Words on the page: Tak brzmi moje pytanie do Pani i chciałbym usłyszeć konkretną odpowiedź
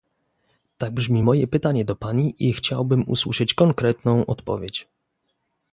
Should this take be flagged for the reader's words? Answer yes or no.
no